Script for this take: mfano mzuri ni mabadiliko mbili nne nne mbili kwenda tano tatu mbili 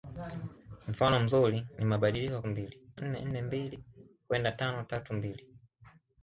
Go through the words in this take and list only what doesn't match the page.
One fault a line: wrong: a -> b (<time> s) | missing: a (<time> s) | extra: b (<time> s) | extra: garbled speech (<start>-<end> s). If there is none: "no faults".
no faults